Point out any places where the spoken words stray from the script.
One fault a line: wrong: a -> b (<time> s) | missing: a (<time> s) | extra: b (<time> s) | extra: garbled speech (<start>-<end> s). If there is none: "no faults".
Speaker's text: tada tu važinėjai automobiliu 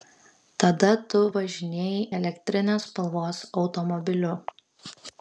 extra: elektrinės spalvos (2.2 s)